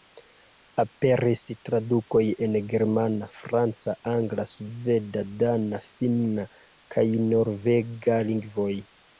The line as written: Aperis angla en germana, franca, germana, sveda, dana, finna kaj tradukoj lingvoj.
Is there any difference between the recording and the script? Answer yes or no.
yes